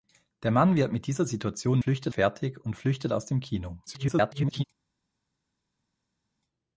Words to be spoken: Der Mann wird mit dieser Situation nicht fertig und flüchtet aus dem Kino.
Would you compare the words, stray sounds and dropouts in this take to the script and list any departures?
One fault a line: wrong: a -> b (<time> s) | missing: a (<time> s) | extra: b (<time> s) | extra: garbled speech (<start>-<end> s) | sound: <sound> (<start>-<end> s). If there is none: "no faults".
wrong: nicht -> flüchtet (1.8 s)
extra: garbled speech (3.9-4.6 s)